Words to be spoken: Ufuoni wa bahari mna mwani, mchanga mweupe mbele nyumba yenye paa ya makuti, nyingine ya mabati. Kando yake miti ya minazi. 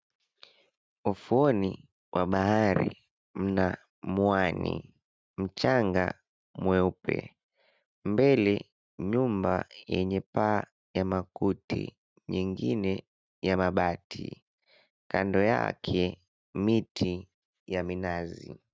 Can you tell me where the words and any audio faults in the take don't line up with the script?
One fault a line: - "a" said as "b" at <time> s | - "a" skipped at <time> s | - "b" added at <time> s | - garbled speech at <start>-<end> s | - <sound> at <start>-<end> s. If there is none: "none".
none